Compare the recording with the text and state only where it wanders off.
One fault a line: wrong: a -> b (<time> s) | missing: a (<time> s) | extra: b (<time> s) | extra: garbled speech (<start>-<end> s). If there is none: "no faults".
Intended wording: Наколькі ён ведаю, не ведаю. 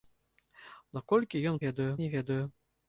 no faults